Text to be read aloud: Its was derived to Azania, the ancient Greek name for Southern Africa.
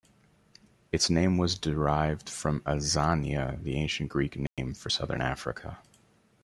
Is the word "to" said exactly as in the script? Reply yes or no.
no